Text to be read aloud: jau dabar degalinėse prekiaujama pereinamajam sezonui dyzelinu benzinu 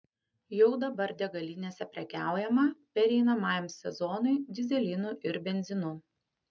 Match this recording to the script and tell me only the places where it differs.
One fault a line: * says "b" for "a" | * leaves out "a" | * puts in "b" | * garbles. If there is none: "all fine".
* puts in "ir"